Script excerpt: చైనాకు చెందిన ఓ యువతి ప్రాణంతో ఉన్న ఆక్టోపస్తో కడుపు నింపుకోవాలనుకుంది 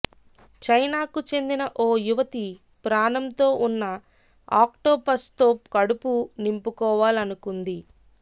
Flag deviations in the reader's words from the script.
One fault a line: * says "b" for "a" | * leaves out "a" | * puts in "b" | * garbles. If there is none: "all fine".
all fine